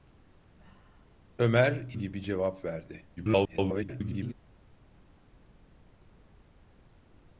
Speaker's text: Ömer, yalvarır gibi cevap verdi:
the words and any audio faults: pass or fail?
fail